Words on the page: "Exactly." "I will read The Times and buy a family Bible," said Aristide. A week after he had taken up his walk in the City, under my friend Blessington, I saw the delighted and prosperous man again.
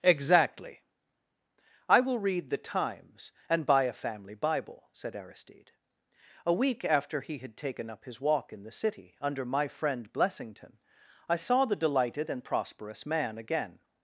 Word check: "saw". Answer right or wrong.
right